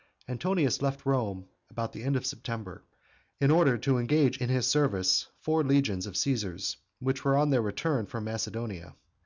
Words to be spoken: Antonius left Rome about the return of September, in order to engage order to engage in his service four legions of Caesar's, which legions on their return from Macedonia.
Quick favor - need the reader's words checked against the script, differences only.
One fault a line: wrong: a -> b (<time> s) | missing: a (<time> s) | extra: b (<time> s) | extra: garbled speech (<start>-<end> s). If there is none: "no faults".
wrong: return -> end (2.0 s)
missing: order to engage (4.4 s)
wrong: legions -> were (7.3 s)